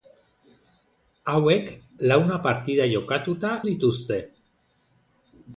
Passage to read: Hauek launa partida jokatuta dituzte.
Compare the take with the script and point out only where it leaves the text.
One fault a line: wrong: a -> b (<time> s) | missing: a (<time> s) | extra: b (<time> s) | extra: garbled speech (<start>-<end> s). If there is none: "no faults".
no faults